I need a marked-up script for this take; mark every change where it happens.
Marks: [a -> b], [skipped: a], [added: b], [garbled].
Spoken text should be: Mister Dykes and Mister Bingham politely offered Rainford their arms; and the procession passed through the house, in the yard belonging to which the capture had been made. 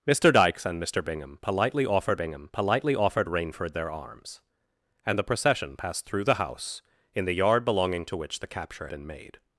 Mister Dykes and Mister Bingham politely offered [added: Bingham politely offered] Rainford their arms; and the procession passed through the house, in the yard belonging to which the capture [skipped: had] been made.